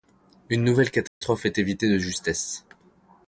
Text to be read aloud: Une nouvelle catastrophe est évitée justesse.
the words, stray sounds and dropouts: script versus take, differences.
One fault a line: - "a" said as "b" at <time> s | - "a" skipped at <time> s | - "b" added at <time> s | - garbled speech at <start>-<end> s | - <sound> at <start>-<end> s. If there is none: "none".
- dropout at 1.1-1.2 s
- "de" added at 1.9 s